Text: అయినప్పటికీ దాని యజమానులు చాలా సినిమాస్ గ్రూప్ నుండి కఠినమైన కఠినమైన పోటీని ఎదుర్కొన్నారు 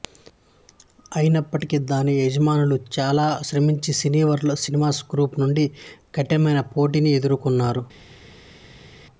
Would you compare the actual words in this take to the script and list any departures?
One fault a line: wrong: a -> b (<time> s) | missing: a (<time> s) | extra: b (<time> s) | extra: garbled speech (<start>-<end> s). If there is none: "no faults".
extra: శ్రమించి సినీవర్ల్డ్ (3.5 s)
missing: కఠినమైన (6.6 s)